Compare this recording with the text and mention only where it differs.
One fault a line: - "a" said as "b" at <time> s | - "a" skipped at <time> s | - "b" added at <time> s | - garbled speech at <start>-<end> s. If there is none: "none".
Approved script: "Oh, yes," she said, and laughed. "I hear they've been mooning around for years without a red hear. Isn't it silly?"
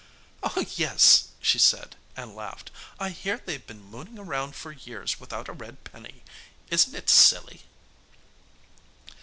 - "hear" said as "penny" at 5.8 s